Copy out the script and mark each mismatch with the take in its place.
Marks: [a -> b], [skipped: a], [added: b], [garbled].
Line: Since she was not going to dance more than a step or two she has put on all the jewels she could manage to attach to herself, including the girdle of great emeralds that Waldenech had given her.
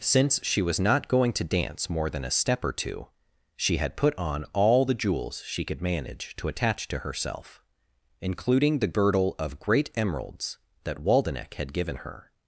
Since she was not going to dance more than a step or two she [has -> had] put on all the jewels she could manage to attach to herself, including the girdle of great emeralds that Waldenech had given her.